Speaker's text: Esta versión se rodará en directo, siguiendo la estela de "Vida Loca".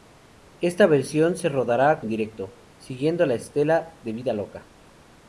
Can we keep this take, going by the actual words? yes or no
yes